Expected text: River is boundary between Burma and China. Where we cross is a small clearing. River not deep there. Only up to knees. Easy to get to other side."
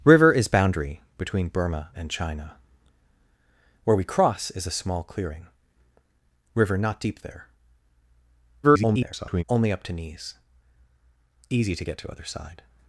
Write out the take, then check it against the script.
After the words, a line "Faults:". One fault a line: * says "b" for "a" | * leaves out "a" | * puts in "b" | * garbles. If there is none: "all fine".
River is boundary between Burma and China. Where we cross is a small clearing. River not deep there. [garbled] Only up to knees. Easy to get to other side."
Faults:
* garbles